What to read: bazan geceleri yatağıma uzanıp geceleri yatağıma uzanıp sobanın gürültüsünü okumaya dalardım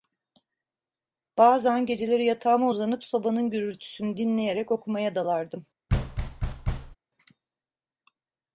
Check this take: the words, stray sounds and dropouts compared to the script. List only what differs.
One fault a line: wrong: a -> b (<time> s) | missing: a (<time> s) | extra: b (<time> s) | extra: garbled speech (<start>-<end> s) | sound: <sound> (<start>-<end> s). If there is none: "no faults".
missing: geceleri yatağıma uzanıp (3.0 s)
extra: dinleyerek (4.2 s)
sound: thud (5.9-7.0 s)